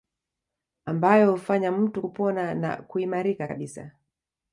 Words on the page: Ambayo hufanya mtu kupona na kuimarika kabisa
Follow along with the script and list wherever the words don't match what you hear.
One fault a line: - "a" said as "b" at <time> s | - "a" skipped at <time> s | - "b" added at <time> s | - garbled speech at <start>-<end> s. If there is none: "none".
none